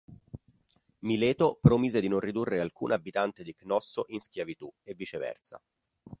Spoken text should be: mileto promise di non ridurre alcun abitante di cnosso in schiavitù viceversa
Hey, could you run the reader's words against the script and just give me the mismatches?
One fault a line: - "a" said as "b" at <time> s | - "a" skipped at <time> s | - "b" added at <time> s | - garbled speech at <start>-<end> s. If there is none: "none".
- "e" added at 4.8 s